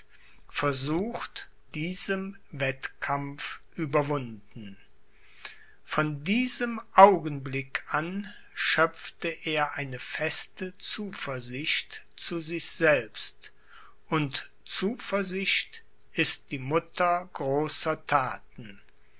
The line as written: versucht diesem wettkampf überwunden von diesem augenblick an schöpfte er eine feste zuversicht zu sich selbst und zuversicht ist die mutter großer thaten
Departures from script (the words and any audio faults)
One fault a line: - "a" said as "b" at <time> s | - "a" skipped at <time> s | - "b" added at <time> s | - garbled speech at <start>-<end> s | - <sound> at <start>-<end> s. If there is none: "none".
none